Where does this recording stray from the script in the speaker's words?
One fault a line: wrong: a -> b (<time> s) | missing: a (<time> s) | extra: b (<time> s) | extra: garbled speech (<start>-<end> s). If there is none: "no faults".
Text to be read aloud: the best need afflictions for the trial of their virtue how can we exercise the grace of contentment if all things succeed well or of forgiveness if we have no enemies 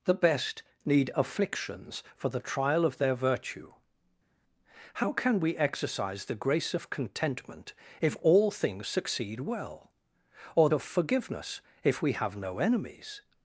no faults